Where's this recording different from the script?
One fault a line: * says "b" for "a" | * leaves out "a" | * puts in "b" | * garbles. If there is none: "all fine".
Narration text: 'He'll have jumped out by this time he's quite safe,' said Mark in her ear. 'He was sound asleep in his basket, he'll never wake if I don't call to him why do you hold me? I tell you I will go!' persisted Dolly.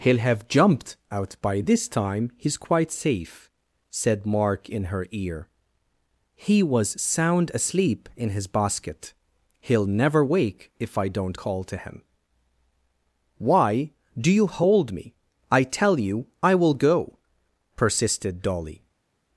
all fine